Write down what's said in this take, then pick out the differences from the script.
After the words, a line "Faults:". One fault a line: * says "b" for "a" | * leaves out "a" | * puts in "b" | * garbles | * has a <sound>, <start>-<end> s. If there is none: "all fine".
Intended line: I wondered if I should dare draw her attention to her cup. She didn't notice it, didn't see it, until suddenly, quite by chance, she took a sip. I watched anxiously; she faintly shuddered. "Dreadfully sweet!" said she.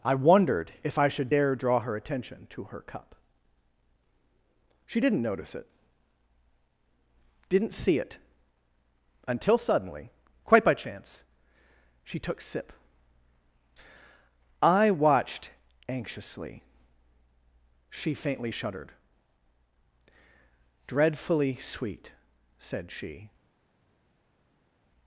I wondered if I should dare draw her attention to her cup. She didn't notice it, didn't see it, until suddenly, quite by chance, she took sip. I watched anxiously; she faintly shuddered. "Dreadfully sweet!" said she.
Faults:
* leaves out "a"